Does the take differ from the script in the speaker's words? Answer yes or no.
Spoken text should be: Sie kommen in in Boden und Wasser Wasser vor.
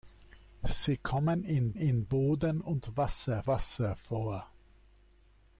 no